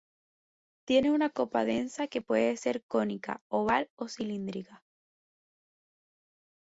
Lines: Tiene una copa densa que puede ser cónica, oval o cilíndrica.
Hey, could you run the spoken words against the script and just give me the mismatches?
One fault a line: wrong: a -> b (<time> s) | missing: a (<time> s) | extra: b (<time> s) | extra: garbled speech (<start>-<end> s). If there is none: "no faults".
no faults